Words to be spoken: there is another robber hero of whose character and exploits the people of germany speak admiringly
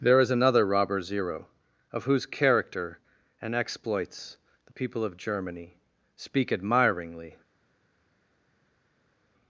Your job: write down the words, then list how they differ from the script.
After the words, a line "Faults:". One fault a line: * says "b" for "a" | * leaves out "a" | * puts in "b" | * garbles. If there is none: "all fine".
there is another robber zero of whose character and exploits the people of germany speak admiringly
Faults:
* says "zero" for "hero"